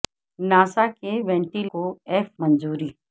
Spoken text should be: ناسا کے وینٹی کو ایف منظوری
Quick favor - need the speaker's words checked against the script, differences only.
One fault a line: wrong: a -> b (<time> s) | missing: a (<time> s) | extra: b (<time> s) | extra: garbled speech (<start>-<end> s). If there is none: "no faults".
no faults